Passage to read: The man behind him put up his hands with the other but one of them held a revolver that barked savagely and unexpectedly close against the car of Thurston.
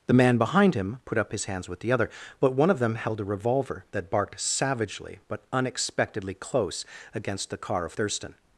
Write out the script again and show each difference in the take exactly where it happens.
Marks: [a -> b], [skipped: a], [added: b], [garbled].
The man behind him put up his hands with the other but one of them held a revolver that barked savagely [and -> but] unexpectedly close against the car of Thurston.